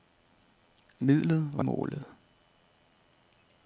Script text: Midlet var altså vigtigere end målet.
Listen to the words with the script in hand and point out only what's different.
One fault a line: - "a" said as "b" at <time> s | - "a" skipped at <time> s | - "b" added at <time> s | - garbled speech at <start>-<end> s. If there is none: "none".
- "altså vigtigere end" skipped at 1.6 s